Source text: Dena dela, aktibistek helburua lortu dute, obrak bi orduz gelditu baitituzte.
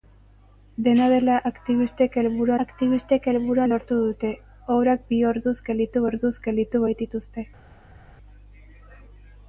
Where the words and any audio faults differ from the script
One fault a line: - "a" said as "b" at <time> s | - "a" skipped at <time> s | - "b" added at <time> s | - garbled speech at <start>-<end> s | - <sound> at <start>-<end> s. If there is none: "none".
- "aktibistek helburua" added at 2.6 s
- "orduz gelditu" added at 6.1 s